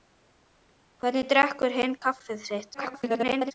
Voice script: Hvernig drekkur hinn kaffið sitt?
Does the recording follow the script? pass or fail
fail